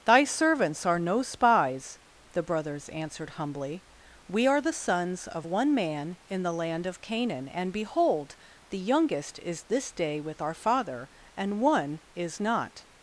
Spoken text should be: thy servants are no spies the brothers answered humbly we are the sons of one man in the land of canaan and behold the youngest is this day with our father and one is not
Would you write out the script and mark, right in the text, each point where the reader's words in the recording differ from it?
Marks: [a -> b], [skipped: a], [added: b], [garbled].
thy servants are no spies the brothers answered humbly we are the sons of one man in the land of canaan and behold the youngest is this day with our father and one is not